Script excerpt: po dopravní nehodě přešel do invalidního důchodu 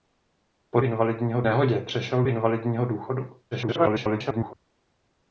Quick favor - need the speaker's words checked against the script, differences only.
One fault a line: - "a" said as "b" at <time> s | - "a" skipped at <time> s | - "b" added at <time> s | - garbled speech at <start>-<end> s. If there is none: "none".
- "dopravní" said as "invalidního" at 0.8 s
- "do" skipped at 2.2 s
- garbled speech at 3.5-4.5 s